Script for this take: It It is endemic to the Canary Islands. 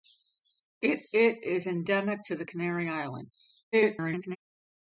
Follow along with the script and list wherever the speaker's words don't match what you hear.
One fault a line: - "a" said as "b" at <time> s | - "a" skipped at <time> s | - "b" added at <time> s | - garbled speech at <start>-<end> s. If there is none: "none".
- garbled speech at 3.7-4.4 s